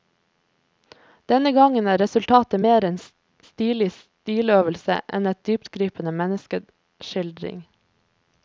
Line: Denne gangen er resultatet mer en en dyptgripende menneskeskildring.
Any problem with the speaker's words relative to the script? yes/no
yes